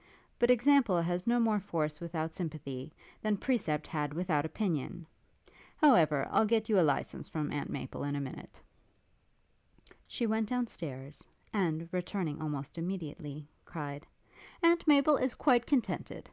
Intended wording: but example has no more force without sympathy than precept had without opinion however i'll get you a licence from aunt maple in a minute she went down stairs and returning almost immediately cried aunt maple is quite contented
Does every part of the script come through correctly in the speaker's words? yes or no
yes